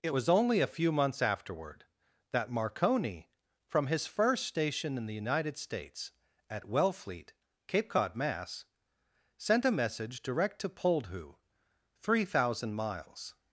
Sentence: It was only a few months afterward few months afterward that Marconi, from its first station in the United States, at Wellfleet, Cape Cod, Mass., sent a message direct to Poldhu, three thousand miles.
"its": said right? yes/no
no